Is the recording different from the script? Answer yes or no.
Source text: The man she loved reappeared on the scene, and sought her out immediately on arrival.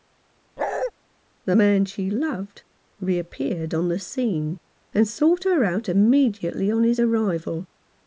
yes